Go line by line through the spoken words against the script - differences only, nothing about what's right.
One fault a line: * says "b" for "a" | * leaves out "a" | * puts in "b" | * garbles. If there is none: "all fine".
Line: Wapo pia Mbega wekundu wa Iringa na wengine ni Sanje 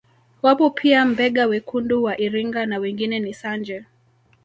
all fine